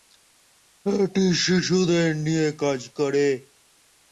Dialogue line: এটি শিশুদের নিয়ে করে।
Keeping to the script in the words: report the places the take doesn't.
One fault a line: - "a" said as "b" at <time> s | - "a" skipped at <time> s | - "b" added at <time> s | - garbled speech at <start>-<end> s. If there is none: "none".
- "কাজ" added at 2.6 s